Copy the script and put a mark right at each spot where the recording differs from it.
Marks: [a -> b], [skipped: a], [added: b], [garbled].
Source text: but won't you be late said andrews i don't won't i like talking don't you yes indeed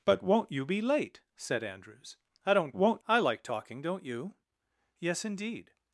but won't you be late said andrews i don't won't i like talking don't you yes indeed